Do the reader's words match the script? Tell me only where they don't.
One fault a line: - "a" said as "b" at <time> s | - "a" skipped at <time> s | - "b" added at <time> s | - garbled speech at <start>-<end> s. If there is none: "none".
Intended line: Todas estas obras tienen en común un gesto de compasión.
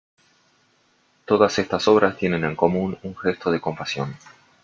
none